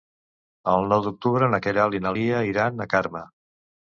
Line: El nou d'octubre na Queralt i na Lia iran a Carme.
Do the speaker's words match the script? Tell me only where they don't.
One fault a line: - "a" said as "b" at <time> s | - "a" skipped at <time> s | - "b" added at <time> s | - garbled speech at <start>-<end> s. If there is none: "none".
none